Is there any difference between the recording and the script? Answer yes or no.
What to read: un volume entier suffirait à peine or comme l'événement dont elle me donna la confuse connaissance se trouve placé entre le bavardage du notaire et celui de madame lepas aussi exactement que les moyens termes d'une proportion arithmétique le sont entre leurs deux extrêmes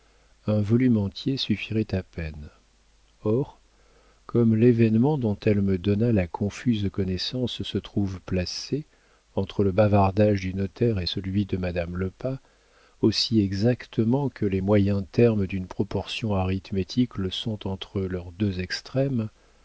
no